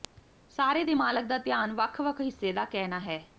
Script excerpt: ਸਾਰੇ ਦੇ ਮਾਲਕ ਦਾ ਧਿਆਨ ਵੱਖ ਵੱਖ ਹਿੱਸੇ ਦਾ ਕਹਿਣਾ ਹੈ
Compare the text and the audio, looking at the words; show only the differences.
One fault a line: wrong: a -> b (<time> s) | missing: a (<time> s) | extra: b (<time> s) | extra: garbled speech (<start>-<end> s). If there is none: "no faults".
no faults